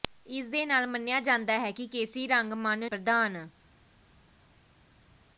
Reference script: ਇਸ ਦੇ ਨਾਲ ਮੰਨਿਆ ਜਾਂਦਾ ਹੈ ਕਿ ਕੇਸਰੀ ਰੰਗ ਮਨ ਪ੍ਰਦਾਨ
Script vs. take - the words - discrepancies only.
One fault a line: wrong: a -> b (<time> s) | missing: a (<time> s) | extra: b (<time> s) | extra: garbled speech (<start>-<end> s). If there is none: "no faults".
no faults